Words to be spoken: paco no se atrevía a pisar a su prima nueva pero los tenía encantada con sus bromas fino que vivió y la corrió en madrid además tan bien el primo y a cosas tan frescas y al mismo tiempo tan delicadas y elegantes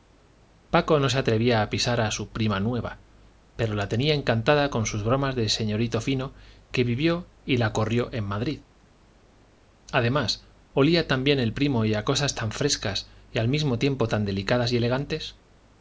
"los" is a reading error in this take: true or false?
true